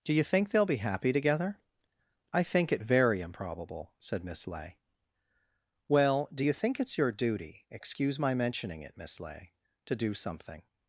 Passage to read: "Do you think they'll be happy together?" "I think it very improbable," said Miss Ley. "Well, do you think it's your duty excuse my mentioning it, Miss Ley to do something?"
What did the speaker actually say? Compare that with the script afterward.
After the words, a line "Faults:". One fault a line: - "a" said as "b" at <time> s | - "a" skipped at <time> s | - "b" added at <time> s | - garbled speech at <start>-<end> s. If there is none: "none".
"Do you think they'll be happy together?" "I think it very improbable," said Miss Ley. "Well, do you think it's your duty excuse my mentioning it, Miss Ley to do something?"
Faults:
none